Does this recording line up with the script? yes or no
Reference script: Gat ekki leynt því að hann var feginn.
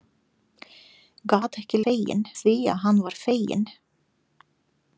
no